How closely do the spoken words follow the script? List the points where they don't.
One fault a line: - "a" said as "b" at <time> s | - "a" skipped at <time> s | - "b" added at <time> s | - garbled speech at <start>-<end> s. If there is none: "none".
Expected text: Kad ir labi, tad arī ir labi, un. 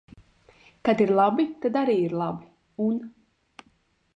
none